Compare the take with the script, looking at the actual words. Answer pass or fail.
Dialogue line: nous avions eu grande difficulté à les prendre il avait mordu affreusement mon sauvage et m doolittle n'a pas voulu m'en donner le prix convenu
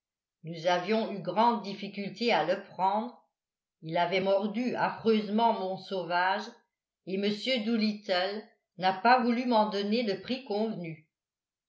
fail